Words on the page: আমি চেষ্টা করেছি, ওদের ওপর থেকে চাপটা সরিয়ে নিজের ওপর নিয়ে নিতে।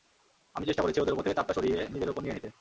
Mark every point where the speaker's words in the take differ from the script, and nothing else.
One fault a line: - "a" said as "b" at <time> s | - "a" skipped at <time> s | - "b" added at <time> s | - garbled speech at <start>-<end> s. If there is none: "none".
none